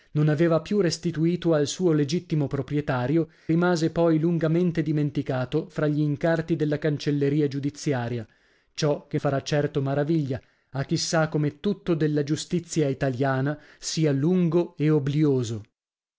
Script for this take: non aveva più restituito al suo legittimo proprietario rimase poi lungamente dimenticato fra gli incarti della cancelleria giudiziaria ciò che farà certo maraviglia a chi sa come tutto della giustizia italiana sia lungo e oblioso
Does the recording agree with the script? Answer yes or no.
yes